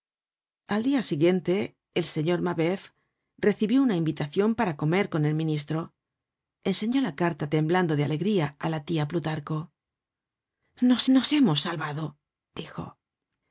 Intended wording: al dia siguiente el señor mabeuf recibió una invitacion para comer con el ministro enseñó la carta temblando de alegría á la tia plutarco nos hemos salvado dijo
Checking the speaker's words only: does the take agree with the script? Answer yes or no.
no